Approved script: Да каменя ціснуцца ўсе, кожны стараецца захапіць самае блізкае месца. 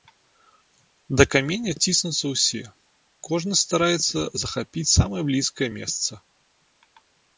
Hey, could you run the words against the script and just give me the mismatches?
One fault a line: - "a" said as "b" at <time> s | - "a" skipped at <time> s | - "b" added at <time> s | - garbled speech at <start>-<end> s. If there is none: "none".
none